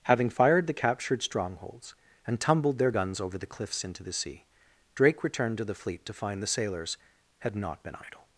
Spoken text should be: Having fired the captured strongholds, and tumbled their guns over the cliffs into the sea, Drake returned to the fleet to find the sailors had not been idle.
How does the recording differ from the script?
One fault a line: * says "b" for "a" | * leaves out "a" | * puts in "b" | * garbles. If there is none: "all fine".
all fine